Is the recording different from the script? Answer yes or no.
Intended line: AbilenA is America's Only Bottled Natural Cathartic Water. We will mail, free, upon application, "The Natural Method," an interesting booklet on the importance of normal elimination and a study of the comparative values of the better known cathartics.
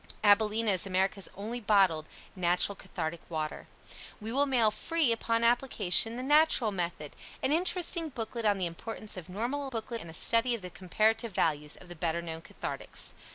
yes